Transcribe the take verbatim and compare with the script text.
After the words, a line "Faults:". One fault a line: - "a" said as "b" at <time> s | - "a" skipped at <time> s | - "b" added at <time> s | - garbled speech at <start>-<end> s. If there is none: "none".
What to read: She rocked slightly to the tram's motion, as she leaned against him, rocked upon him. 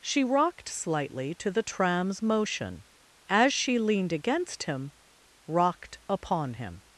She rocked slightly to the tram's motion, as she leaned against him, rocked upon him.
Faults:
none